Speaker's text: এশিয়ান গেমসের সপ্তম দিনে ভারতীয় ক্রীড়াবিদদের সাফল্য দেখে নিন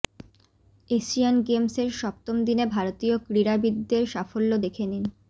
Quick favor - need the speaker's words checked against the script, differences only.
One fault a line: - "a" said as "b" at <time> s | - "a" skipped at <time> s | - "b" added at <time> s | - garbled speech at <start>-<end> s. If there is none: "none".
none